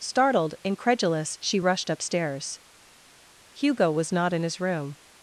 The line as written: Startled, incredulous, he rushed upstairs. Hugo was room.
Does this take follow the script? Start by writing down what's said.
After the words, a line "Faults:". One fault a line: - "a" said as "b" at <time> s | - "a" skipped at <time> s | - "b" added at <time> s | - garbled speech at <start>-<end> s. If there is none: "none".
Startled, incredulous, she rushed upstairs. Hugo was not in his room.
Faults:
- "he" said as "she" at 1.4 s
- "not in his" added at 4.1 s